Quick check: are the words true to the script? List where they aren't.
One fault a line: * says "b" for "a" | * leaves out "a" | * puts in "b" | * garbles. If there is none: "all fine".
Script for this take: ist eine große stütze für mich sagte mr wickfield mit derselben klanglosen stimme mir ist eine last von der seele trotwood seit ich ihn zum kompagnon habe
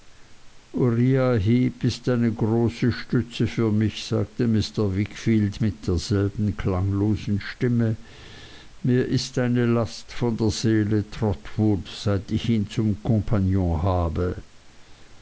all fine